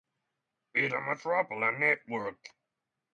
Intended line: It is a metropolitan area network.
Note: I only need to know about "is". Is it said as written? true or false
false